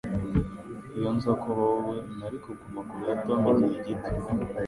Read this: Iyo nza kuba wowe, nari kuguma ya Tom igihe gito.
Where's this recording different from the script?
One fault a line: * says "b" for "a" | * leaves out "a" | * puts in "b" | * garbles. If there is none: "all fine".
* puts in "kure"